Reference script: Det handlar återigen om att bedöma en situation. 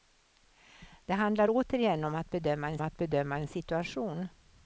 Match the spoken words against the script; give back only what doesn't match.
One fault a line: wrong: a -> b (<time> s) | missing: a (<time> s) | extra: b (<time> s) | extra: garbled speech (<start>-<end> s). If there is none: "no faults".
extra: att bedöma en (2.8 s)